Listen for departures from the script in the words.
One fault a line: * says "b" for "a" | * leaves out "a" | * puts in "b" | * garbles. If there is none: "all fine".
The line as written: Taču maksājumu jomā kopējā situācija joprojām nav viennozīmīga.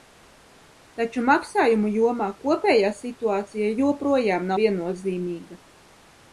* leaves out "nav"